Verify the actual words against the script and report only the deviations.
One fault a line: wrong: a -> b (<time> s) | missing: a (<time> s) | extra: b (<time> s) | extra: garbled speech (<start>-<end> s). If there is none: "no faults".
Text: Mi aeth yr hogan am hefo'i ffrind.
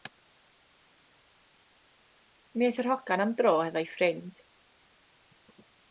extra: dro (3.4 s)